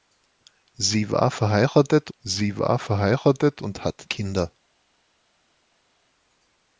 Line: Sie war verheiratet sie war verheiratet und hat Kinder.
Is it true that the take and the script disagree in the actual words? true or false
false